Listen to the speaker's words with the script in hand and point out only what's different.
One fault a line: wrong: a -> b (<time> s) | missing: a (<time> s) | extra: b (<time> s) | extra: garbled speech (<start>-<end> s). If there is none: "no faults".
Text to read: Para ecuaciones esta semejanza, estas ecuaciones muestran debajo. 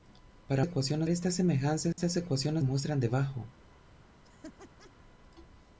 no faults